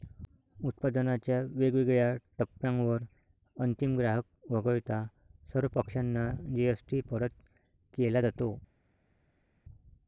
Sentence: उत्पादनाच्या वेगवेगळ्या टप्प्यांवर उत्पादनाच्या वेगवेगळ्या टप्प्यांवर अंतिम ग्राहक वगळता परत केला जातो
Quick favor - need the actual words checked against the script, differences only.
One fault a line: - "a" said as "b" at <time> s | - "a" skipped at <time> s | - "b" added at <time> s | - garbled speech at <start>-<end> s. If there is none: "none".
- "उत्पादनाच्या वेगवेगळ्या टप्प्यांवर अंतिम ग्राहक वगळता" said as "अंतिम ग्राहक वगळता सर्व पक्षांना जी.एस.टी" at 3.5 s